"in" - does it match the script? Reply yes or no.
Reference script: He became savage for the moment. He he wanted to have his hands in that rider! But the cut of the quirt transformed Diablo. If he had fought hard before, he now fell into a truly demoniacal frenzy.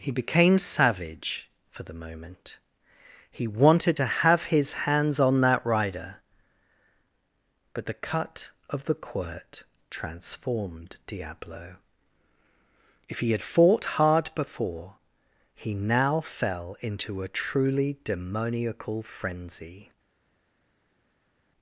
no